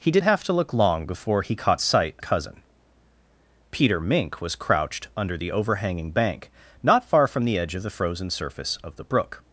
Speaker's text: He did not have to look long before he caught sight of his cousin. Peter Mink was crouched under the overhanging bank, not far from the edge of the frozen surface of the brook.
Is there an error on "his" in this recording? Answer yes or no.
yes